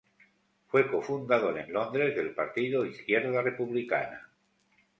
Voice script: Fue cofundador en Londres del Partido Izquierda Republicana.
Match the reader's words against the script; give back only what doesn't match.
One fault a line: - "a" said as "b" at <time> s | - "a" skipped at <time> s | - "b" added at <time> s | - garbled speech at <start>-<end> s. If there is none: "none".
none